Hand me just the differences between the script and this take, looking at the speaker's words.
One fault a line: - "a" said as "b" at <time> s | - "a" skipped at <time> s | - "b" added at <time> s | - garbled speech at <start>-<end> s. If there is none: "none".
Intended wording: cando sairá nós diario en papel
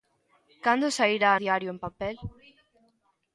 - "nós" skipped at 1.3 s